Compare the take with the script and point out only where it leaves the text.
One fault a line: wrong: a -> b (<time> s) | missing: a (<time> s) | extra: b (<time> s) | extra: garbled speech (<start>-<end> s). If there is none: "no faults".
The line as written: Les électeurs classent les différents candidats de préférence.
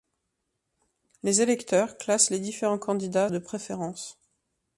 no faults